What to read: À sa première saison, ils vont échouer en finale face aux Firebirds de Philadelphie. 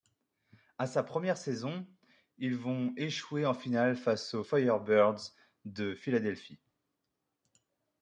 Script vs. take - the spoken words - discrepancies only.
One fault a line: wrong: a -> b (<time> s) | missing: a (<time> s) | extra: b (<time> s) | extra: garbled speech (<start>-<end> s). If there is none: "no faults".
no faults